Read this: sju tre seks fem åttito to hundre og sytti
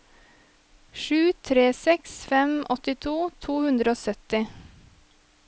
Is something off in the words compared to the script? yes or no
no